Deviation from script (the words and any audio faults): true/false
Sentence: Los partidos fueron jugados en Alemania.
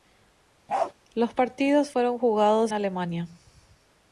true